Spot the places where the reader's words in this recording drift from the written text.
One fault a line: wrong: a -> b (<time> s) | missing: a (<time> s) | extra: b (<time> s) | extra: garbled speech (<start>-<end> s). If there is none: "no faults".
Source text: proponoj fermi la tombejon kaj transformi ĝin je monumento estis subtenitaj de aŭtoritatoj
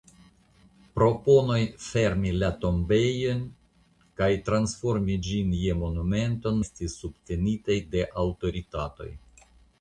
no faults